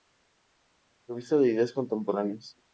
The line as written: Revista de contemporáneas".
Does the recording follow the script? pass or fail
fail